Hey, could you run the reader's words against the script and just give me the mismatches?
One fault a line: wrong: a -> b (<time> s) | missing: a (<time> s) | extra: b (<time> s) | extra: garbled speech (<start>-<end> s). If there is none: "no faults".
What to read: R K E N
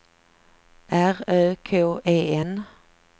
extra: Ö (1.3 s)